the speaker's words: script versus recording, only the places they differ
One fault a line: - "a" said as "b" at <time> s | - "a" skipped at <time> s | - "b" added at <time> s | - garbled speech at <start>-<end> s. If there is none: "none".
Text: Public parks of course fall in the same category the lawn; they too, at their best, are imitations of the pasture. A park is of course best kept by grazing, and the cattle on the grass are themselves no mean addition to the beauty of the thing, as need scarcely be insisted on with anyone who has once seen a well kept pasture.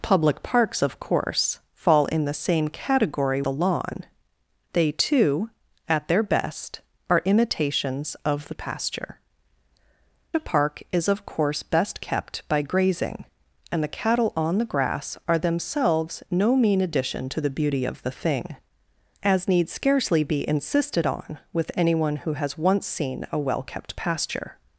none